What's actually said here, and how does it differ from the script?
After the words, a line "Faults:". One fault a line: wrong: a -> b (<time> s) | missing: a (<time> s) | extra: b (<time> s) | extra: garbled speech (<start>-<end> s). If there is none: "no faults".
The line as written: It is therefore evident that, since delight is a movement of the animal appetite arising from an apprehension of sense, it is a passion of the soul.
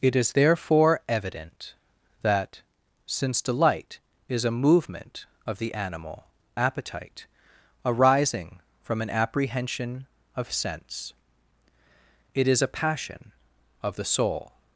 It is therefore evident that, since delight is a movement of the animal appetite arising from an apprehension of sense, it is a passion of the soul.
Faults:
no faults